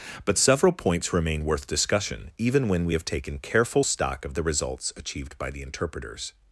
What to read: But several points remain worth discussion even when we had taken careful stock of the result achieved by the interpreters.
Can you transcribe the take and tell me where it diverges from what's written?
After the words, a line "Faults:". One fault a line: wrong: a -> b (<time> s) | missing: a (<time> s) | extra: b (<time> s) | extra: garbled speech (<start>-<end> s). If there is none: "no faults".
But several points remain worth discussion even when we have taken careful stock of the results achieved by the interpreters.
Faults:
wrong: had -> have (2.9 s)
wrong: result -> results (4.4 s)